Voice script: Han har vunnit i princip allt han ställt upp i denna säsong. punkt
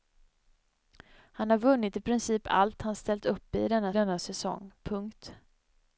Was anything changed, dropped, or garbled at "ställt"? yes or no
no